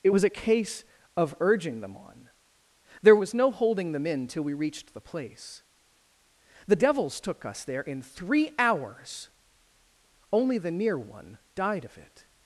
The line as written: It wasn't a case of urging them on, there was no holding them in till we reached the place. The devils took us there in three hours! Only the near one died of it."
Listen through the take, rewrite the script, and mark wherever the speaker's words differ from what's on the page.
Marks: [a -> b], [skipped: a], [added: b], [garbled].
It [wasn't -> was] a case of urging them on, there was no holding them in till we reached the place. The devils took us there in three hours! Only the near one died of it."